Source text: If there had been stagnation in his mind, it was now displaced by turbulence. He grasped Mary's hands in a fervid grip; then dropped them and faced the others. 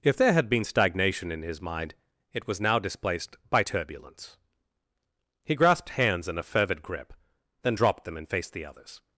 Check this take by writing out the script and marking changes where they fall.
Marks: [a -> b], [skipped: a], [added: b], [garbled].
If there had been stagnation in his mind, it was now displaced by turbulence. He grasped [skipped: Mary's] hands in a fervid grip; then dropped them and faced the others.